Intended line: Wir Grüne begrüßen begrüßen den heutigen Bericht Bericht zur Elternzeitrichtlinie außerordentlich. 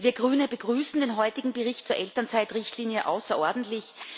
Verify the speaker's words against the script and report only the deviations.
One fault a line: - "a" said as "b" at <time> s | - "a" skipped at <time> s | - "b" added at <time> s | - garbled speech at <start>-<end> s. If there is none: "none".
- "begrüßen" skipped at 1.0 s
- "Bericht" skipped at 1.9 s